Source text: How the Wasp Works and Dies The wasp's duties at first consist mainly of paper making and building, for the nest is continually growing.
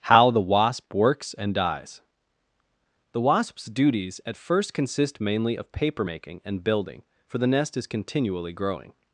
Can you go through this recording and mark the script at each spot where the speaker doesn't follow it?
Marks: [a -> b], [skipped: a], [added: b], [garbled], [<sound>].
How the Wasp Works and Dies The wasp's duties at first consist mainly of paper making and building, for the nest is continually growing.